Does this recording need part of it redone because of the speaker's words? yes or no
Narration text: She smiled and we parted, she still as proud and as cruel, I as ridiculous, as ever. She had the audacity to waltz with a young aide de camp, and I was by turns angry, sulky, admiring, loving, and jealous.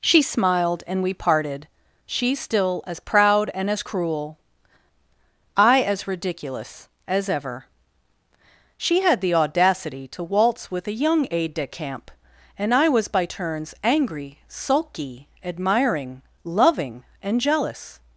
no